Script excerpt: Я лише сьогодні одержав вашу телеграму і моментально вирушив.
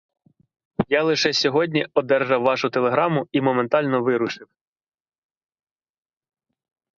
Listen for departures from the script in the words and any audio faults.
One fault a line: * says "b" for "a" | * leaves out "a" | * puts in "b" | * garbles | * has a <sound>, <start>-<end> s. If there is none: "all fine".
all fine